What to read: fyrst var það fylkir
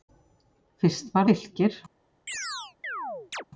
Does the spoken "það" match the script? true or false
false